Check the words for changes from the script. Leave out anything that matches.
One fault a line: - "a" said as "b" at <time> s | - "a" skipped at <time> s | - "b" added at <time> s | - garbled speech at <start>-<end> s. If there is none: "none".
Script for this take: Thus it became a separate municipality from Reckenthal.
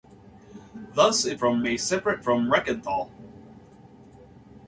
- "became" said as "from" at 1.4 s
- "municipality" skipped at 2.2 s